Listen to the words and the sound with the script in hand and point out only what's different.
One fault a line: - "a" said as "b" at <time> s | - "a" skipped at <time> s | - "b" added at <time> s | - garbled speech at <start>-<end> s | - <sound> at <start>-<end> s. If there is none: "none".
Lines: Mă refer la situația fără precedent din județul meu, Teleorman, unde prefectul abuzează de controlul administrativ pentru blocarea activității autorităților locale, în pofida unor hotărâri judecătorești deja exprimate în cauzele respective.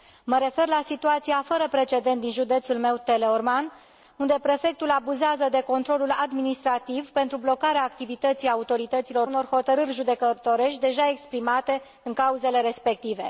- "locale în pofida" skipped at 9.3 s